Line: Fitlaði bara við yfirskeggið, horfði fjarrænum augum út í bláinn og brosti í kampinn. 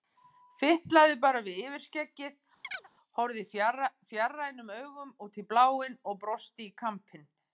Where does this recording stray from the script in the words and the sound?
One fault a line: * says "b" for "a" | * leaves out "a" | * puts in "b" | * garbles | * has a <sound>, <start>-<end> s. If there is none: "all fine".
* has a chirp, 2.6-2.9 s